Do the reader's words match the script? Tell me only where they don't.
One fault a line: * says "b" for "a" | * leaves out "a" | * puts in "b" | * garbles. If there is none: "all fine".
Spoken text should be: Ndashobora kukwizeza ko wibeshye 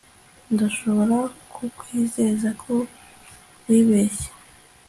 all fine